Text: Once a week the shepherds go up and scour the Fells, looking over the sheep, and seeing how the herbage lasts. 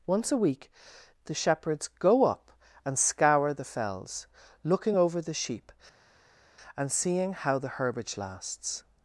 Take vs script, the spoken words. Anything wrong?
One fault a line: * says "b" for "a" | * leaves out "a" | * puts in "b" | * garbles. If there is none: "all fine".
all fine